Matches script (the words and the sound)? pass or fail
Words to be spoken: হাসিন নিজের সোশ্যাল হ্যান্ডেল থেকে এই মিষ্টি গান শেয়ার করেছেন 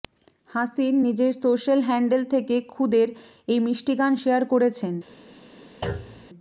fail